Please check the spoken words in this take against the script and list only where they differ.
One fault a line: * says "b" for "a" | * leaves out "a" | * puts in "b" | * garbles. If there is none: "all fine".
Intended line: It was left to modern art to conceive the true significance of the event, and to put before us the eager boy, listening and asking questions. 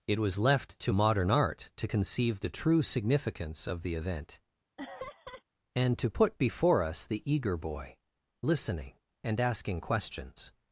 all fine